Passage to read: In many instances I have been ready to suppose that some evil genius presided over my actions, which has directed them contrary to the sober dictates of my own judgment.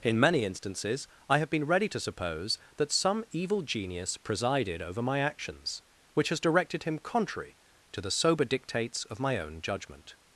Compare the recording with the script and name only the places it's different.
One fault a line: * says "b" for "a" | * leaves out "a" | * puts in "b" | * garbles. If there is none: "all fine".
* says "him" for "them"